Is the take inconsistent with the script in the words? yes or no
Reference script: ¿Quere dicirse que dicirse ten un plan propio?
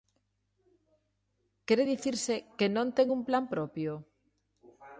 yes